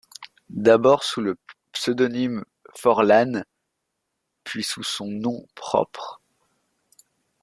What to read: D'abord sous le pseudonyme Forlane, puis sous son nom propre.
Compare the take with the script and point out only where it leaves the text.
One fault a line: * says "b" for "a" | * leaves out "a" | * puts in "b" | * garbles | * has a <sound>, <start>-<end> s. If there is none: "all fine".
all fine